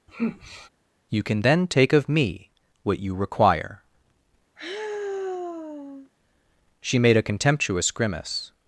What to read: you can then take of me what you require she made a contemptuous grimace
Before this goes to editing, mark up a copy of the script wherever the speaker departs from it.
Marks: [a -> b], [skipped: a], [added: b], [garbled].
you can then take of me what you require she made a contemptuous grimace